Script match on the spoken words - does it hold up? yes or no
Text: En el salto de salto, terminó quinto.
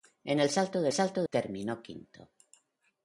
yes